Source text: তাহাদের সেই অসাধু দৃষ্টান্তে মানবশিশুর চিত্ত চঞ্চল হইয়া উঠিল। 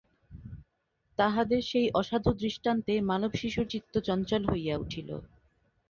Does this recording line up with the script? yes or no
yes